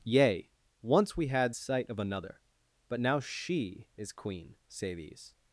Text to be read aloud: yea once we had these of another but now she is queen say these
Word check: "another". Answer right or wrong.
right